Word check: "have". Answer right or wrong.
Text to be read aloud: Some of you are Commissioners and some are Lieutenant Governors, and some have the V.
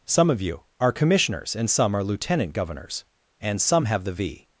right